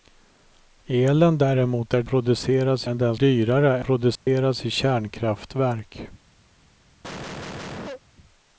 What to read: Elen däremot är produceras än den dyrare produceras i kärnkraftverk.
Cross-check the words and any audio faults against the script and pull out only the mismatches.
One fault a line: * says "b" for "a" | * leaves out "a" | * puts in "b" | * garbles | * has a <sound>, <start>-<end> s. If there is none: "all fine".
* has a dropout, 4.2-4.3 s
* has a cough, 7.0-8.0 s